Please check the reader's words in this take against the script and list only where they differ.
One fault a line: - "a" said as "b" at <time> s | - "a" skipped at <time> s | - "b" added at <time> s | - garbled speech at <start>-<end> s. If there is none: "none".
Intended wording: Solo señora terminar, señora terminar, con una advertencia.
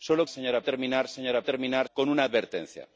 none